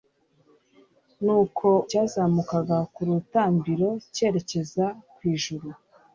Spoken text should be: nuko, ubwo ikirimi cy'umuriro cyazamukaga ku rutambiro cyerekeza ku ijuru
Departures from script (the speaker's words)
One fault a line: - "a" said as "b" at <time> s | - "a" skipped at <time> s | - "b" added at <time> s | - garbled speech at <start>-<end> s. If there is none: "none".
- "ubwo ikirimi cy'umuriro" skipped at 1.7 s